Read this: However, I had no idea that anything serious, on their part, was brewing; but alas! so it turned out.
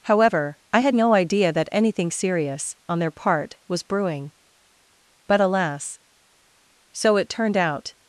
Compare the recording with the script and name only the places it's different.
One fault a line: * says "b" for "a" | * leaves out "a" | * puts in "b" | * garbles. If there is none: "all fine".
all fine